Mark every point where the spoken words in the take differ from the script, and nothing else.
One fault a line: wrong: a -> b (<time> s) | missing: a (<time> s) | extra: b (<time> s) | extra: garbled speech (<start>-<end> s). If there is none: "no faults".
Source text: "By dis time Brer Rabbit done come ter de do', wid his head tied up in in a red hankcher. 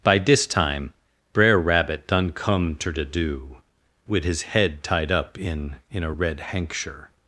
no faults